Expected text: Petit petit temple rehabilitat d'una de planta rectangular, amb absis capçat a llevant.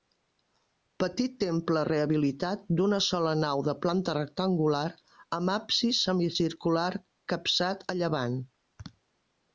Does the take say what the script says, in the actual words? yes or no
no